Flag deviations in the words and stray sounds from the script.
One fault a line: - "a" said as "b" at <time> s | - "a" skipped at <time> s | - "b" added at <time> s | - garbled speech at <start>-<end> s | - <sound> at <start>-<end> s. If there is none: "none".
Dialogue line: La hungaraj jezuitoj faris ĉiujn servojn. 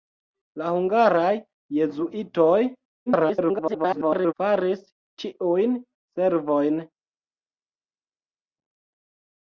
- garbled speech at 3.1-4.3 s